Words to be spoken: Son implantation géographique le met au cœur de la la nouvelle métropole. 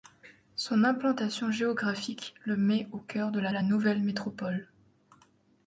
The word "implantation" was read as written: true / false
true